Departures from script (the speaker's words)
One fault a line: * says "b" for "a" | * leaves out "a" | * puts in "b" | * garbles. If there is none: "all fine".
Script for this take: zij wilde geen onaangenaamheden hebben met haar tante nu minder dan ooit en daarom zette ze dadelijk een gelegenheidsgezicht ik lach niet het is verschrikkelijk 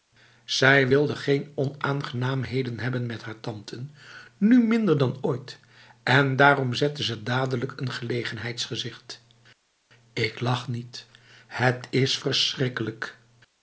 all fine